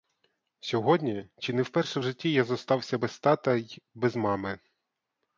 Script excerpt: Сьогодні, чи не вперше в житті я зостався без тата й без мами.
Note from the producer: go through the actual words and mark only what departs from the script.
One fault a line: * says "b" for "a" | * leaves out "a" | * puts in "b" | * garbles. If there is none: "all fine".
all fine